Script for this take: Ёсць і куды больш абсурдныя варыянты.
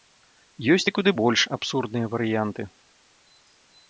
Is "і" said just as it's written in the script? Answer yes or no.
yes